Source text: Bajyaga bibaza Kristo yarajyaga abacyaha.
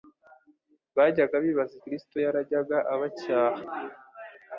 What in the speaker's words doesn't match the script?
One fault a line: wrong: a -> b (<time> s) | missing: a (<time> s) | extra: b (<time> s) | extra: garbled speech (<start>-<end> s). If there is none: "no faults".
no faults